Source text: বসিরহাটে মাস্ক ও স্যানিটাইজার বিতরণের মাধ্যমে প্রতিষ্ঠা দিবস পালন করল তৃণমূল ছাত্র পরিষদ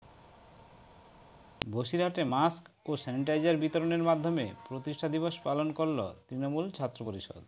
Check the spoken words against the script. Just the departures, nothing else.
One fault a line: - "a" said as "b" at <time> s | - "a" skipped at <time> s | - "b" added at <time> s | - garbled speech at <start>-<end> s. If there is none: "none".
none